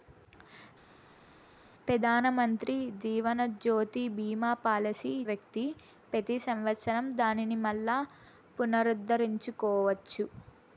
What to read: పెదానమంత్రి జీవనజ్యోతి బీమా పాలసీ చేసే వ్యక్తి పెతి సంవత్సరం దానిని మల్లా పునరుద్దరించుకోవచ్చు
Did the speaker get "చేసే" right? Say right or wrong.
wrong